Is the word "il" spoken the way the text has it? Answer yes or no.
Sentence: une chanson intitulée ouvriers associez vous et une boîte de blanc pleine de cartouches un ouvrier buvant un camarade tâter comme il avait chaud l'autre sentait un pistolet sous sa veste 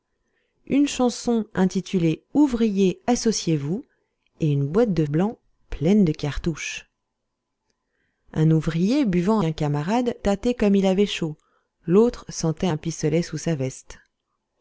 yes